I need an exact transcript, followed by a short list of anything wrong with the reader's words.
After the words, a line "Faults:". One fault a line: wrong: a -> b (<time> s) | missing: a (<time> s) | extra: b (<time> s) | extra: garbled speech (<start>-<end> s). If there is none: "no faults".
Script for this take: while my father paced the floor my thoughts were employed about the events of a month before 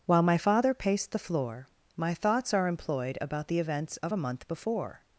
while my father paced the floor my thoughts are employed about the events of a month before
Faults:
wrong: were -> are (2.5 s)